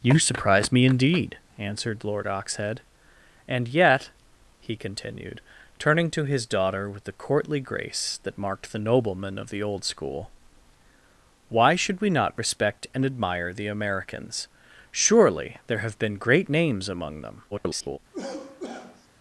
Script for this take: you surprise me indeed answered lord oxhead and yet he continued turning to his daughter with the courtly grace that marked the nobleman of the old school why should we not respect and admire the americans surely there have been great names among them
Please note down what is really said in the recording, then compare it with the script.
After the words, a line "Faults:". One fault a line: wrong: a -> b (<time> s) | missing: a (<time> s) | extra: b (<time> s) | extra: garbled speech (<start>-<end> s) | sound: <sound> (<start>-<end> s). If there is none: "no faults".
you surprise me indeed answered lord oxhead and yet he continued turning to his daughter with the courtly grace that marked the nobleman of the old school why should we not respect and admire the americans surely there have been great names among them [garbled]
Faults:
extra: garbled speech (17.5-18.0 s)
sound: cough (18.1-19.1 s)